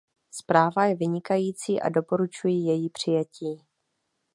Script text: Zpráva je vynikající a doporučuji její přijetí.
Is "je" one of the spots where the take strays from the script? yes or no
no